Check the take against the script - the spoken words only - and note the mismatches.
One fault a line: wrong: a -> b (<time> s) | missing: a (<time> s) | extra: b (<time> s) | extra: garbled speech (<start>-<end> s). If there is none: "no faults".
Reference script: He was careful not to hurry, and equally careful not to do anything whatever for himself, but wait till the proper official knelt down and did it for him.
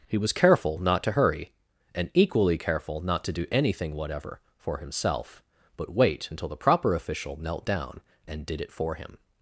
wrong: till -> until (6.3 s)